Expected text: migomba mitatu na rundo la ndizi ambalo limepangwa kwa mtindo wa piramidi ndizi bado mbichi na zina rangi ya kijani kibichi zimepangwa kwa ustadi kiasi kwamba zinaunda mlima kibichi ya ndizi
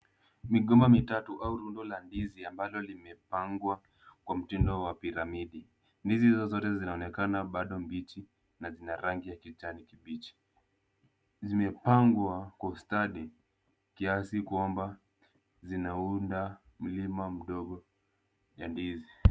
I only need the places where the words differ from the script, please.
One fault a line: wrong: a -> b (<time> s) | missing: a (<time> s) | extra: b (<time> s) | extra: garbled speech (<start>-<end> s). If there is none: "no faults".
wrong: na -> au (1.4 s)
extra: hizo zote zinaonekana (6.3 s)
wrong: kibichi -> mdogo (17.3 s)